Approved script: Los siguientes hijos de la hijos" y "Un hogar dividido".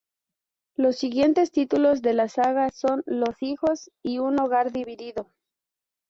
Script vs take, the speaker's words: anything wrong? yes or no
yes